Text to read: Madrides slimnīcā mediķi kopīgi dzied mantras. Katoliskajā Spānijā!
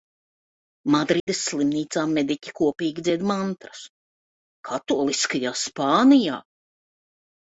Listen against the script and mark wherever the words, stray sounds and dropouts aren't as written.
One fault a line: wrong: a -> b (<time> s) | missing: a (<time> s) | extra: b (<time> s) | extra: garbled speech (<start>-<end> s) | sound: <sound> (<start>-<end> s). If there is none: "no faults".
sound: dropout (1.2-1.3 s)